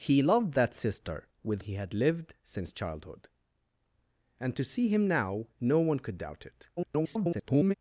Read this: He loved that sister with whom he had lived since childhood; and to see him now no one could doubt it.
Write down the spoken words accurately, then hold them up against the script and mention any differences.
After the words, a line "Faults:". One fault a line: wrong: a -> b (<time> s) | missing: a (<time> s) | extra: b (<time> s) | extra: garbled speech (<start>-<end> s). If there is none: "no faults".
He loved that sister with he had lived since childhood; and to see him now no one could doubt it. [garbled]
Faults:
missing: whom (1.6 s)
extra: garbled speech (6.8-7.7 s)